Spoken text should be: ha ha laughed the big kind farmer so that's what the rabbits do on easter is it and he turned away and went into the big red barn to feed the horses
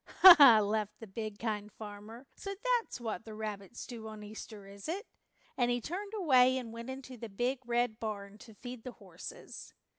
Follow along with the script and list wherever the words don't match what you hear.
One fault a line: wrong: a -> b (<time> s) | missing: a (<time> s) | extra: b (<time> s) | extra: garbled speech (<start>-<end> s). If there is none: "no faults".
no faults